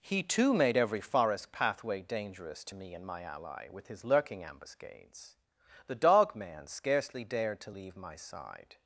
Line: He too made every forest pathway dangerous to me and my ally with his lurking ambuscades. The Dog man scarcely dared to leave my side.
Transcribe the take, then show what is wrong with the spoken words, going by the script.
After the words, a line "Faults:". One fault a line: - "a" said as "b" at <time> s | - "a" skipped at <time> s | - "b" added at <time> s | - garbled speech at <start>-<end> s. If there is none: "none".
He too made every forest pathway dangerous to me and my ally with his lurking ambuscades. The Dog man scarcely dared to leave my side.
Faults:
none